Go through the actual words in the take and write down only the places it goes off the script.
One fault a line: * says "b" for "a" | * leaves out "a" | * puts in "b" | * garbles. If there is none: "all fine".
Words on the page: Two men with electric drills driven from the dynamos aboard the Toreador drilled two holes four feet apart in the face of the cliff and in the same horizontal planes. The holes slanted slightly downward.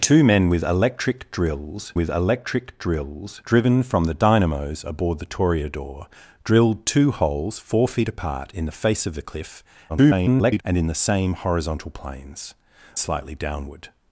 * puts in "with electric drills"
* garbles
* leaves out "The holes slanted"